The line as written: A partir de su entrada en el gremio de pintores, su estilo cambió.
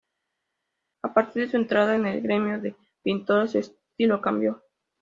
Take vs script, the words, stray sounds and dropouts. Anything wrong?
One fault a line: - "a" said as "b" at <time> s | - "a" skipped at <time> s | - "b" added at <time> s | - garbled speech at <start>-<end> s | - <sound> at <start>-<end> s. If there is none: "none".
none